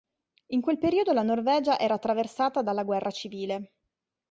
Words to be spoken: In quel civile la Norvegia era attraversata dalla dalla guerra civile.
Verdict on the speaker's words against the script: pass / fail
fail